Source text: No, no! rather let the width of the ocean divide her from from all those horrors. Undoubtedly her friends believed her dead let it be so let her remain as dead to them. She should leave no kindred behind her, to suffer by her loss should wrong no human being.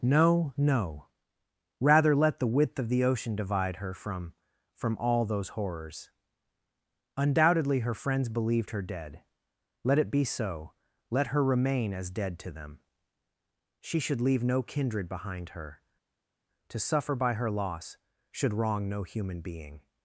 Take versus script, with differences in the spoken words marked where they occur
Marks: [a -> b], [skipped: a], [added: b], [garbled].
No, no! rather let the width of the ocean divide her from from all those horrors. Undoubtedly her friends believed her dead let it be so let her remain as dead to them. She should leave no kindred behind her, to suffer by her loss should wrong no human being.